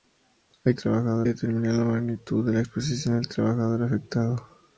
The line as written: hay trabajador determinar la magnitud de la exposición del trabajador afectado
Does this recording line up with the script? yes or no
yes